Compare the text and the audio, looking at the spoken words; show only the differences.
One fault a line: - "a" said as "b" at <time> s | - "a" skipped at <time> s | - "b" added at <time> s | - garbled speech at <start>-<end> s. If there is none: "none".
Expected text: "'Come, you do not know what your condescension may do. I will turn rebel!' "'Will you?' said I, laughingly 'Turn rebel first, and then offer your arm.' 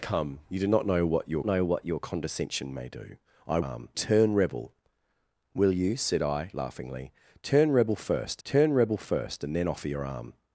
- "know what your" added at 1.4 s
- "will" said as "arm" at 3.6 s
- "turn rebel first" added at 8.4 s